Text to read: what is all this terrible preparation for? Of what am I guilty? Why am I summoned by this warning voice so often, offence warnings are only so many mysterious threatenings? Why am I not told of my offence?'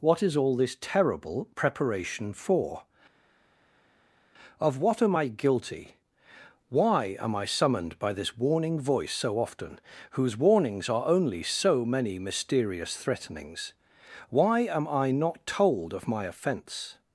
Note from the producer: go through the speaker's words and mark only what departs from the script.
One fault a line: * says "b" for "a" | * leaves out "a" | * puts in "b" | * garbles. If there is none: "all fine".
* says "whose" for "offence"